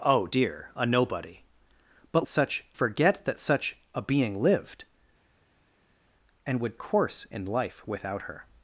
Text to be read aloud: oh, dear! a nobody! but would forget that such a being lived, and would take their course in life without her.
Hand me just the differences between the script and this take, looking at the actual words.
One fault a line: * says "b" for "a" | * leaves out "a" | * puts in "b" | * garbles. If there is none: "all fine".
* says "such" for "would"
* leaves out "take their"